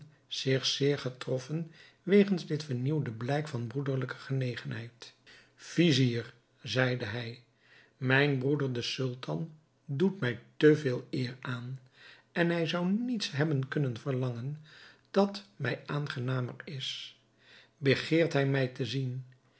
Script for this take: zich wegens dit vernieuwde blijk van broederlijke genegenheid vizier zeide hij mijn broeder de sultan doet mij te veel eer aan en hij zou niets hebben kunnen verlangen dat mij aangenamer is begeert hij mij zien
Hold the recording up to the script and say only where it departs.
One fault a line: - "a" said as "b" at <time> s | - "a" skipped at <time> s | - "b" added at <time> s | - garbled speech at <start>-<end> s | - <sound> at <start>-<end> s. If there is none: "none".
- "zeer getroffen" added at 0.7 s
- "te" added at 18.7 s